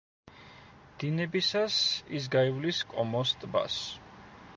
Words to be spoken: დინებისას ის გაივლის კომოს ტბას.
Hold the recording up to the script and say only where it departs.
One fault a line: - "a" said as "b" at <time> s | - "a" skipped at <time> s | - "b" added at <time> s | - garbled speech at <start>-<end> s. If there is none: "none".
none